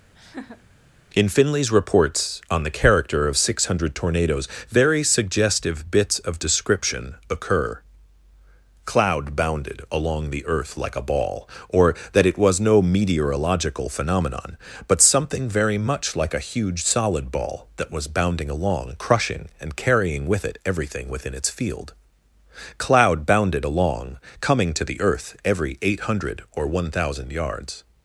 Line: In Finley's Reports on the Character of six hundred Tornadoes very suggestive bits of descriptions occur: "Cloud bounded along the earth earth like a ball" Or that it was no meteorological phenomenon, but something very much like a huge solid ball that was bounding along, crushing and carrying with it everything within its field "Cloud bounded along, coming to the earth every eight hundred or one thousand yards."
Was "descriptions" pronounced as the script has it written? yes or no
no